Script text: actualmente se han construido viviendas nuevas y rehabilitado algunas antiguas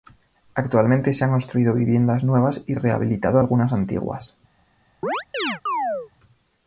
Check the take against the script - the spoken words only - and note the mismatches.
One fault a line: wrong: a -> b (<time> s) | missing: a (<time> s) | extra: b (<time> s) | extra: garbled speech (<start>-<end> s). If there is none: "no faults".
no faults